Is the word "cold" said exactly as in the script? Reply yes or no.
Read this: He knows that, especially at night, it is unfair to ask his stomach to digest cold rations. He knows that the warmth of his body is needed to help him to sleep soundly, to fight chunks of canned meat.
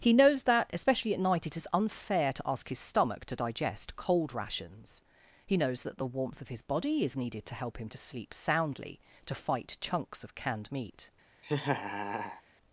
yes